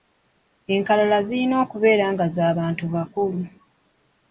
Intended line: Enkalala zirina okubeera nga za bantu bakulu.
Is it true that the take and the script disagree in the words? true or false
false